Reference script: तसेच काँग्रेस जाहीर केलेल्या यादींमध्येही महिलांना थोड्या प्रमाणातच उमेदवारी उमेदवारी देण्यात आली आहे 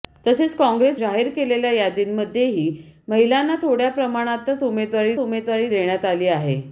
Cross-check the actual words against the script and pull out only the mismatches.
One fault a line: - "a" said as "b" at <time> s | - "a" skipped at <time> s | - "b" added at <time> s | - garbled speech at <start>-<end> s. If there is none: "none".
none